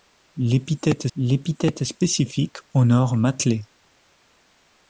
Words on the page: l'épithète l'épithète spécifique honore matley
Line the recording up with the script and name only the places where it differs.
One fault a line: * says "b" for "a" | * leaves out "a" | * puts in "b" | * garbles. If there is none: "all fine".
all fine